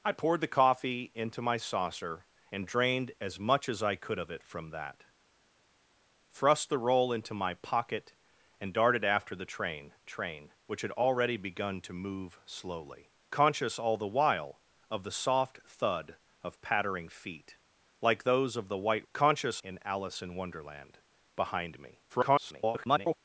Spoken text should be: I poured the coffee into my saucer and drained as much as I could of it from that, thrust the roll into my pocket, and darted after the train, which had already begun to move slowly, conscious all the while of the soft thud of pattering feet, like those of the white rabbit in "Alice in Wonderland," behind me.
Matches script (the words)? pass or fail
fail